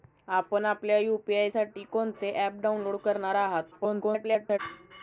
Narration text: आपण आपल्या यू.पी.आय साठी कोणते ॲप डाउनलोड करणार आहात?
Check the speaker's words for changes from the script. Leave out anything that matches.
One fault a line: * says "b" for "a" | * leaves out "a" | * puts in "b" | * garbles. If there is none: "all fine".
* garbles